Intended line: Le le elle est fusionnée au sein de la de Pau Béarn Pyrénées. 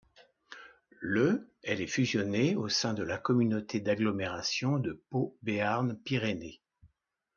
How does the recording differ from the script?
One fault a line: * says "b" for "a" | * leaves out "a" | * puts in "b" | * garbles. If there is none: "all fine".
* leaves out "le"
* puts in "communauté d'agglomération"